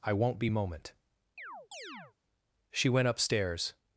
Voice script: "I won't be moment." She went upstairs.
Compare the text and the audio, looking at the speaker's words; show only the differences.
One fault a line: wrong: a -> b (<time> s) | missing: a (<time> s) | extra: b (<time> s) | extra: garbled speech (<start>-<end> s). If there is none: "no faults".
no faults